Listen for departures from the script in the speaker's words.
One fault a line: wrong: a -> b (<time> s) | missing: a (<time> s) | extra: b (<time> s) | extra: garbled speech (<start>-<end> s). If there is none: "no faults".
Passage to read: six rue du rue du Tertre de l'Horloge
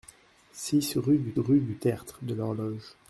no faults